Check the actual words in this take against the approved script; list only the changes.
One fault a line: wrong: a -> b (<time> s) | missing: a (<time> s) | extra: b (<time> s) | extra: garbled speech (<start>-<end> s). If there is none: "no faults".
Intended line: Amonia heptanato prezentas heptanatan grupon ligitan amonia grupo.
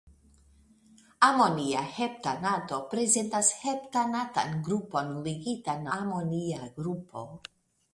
no faults